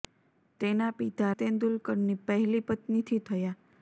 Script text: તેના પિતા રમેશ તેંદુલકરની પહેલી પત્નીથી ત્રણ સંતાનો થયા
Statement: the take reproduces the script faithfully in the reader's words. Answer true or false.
false